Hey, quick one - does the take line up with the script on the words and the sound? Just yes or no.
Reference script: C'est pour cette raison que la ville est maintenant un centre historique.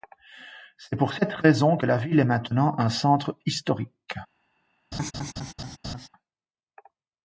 no